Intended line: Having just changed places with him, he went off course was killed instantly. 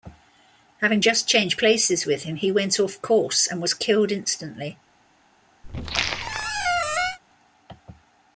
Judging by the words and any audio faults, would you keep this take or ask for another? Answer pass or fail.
fail